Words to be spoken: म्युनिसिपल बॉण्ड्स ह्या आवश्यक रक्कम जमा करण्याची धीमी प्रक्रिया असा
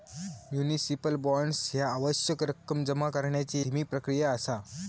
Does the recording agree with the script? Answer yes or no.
yes